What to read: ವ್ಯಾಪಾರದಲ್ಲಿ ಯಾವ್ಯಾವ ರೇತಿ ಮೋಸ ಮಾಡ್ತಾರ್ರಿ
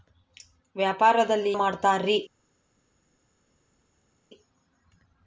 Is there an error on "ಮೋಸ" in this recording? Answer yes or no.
yes